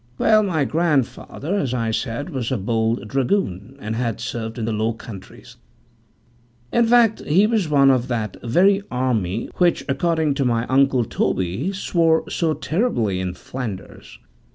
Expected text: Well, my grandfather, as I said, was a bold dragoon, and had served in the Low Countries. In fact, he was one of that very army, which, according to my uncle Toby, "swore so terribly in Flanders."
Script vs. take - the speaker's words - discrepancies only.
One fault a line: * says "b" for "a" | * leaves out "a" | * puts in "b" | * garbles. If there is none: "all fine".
all fine